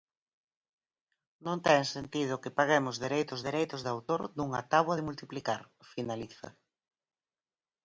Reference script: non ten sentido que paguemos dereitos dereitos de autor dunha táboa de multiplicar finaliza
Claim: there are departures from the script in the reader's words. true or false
false